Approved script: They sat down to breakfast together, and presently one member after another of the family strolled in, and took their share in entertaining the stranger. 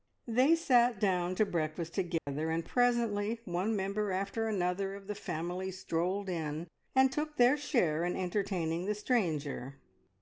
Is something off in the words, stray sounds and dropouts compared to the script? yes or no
yes